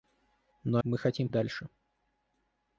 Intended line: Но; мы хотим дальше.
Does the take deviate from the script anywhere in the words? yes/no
no